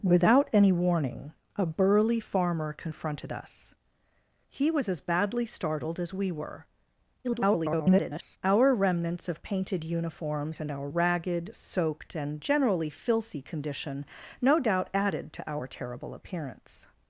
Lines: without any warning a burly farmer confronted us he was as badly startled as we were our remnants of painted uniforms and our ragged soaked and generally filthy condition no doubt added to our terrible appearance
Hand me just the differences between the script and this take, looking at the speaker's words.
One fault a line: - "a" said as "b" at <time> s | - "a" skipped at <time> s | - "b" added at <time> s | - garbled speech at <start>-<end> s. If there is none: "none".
- garbled speech at 7.2-8.4 s